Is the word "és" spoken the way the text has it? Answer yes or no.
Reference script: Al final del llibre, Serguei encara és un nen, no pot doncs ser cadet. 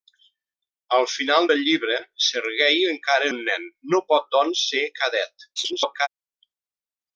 no